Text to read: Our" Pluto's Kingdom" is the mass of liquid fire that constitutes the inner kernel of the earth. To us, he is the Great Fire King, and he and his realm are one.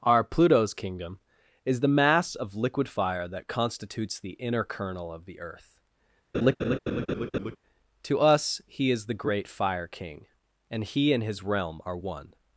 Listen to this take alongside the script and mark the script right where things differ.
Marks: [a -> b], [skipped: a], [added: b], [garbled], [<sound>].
Our" Pluto's Kingdom" is the mass of liquid fire that constitutes the inner kernel of the earth. [laugh] To us, he is the Great Fire King, and he and his realm are one.